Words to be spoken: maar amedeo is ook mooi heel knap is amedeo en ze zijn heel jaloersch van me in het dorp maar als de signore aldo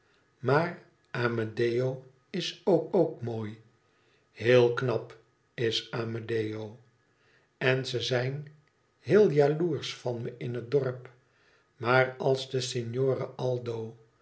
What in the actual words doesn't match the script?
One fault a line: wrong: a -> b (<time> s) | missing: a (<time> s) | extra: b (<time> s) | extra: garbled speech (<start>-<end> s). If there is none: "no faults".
extra: ook (2.9 s)